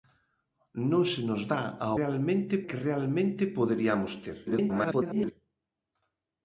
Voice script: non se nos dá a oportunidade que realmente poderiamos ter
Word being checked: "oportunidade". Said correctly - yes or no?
no